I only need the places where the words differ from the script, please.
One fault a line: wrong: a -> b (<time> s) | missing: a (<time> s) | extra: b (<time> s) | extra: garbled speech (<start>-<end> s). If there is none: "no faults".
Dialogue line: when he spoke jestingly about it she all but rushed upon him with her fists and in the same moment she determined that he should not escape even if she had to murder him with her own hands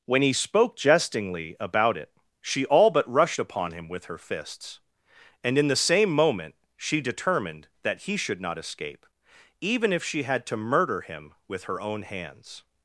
no faults